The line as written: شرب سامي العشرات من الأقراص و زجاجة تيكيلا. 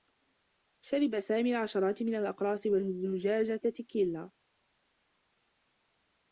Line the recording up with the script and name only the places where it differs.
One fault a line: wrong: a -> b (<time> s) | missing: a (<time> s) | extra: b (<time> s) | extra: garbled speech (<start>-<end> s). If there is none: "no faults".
no faults